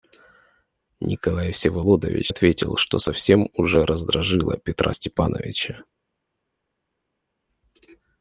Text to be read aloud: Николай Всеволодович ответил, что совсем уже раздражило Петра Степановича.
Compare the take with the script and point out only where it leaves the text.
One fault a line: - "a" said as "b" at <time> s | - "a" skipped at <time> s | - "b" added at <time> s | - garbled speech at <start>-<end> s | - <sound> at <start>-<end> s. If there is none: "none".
none